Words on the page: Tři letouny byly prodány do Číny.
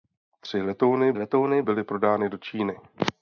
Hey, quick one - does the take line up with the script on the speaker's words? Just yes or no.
no